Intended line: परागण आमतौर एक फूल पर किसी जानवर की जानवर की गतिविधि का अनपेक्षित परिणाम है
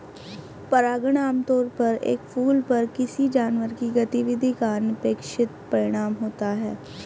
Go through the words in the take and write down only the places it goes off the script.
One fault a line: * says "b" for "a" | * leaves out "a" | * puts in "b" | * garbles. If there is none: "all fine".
* puts in "पर"
* leaves out "जानवर की"
* puts in "होता"